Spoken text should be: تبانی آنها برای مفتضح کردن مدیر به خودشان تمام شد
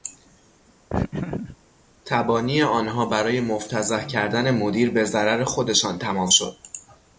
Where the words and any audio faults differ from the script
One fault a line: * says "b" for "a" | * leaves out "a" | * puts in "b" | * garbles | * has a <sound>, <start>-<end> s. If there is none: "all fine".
* has a laugh, 0.9-1.6 s
* puts in "ضرر"